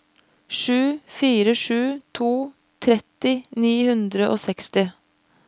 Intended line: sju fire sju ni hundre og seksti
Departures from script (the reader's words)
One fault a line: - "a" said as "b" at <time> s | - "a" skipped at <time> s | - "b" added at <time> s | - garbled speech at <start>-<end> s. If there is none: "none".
- "to tretti" added at 2.2 s